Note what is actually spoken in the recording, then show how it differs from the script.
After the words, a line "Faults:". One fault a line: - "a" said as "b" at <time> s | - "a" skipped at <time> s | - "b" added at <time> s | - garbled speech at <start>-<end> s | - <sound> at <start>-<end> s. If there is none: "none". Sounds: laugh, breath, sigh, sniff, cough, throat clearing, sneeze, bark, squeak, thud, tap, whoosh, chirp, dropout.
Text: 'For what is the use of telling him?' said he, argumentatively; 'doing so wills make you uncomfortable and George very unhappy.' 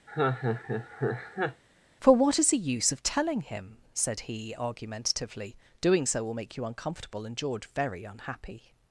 'For what is the use of telling him?' said he, argumentatively; 'doing so will make you uncomfortable and George very unhappy.'
Faults:
- laugh at 0.1-1.6 s
- "wills" said as "will" at 6.2 s